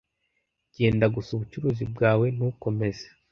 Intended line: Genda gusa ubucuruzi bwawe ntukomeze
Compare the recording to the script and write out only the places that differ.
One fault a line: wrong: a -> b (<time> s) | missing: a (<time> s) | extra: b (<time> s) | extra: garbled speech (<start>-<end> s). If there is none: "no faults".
no faults